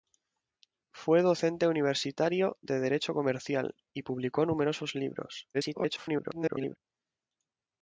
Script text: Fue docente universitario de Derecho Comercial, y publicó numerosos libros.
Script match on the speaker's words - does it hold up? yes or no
no